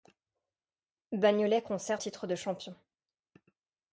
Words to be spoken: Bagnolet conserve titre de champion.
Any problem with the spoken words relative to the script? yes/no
no